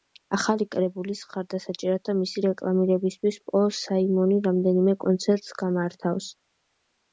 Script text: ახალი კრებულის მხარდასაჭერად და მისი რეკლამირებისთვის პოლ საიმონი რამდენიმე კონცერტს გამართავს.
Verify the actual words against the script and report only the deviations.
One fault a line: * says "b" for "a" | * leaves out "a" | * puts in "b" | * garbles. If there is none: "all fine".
all fine